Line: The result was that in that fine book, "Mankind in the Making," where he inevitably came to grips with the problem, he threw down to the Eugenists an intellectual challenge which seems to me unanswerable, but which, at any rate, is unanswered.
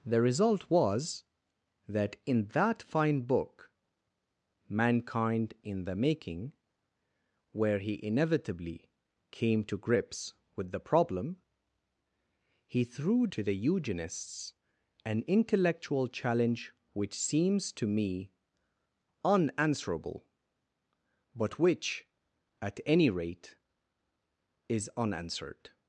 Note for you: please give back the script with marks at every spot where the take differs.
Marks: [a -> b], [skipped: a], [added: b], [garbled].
The result was that in that fine book, "Mankind in the Making," where he inevitably came to grips with the problem, he threw [skipped: down] to the Eugenists an intellectual challenge which seems to me unanswerable, but which, at any rate, is unanswered.